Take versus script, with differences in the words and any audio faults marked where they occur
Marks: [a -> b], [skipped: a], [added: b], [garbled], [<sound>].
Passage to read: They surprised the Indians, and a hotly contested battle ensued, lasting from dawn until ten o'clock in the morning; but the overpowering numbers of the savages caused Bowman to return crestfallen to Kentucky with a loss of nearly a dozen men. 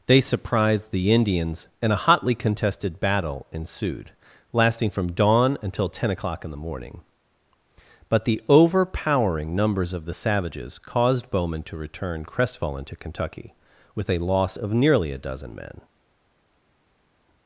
They surprised the Indians, and a hotly contested battle ensued, lasting from dawn until ten o'clock in the morning; but the overpowering numbers of the savages caused Bowman to return crestfallen to Kentucky with a loss of nearly a dozen men.